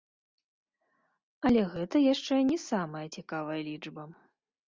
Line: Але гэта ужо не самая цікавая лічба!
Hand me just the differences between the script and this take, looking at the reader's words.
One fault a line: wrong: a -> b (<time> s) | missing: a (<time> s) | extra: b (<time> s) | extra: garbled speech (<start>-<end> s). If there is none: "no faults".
wrong: ужо -> яшчэ (2.1 s)